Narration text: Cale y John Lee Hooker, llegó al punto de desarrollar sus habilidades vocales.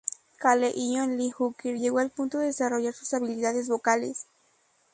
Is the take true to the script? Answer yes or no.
yes